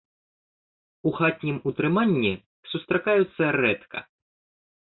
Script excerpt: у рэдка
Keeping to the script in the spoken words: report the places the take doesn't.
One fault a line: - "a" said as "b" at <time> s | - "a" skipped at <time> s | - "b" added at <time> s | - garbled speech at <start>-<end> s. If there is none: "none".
- "хатнім утрыманні сустракаюцца" added at 1.2 s